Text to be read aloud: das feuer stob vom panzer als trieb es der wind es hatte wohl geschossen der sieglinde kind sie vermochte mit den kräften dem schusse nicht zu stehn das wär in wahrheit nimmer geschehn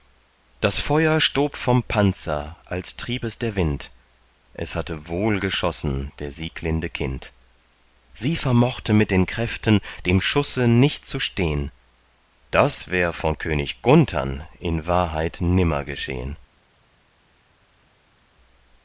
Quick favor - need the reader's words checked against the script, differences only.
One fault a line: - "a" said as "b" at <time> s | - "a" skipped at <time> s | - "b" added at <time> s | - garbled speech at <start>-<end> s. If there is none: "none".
- "von könig gunthern" added at 13.1 s